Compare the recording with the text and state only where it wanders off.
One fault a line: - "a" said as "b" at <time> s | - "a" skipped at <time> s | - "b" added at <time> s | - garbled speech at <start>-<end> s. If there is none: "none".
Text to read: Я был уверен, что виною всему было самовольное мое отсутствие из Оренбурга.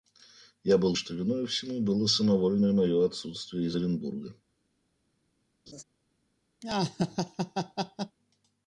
- "уверен" skipped at 1.0 s